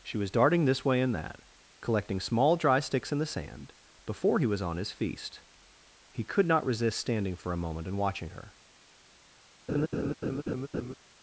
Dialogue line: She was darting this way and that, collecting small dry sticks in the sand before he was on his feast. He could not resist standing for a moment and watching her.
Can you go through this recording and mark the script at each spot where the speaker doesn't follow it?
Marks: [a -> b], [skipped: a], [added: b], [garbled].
She was darting this way and that, collecting small dry sticks in the sand before he was on his feast. He could not resist standing for a moment and watching her.